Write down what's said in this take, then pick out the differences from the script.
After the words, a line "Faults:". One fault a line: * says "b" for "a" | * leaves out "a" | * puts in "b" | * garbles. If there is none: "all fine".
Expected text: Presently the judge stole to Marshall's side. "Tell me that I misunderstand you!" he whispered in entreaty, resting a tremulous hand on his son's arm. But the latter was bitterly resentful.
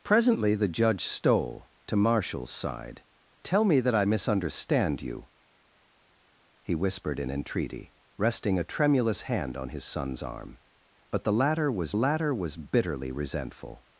Presently the judge stole to Marshall's side. "Tell me that I misunderstand you!" he whispered in entreaty, resting a tremulous hand on his son's arm. But the latter was latter was bitterly resentful.
Faults:
* puts in "latter was"